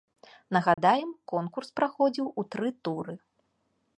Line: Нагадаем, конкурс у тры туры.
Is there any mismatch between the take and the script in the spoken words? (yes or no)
yes